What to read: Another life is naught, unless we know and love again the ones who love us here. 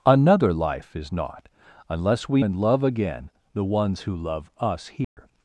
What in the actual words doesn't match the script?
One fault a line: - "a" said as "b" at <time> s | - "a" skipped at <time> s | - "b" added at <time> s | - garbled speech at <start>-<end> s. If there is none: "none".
- "know" skipped at 2.4 s